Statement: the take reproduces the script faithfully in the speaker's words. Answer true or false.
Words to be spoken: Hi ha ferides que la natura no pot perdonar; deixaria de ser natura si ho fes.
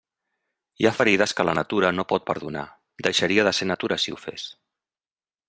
true